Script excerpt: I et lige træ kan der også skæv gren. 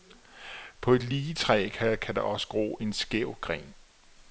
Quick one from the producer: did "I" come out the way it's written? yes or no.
no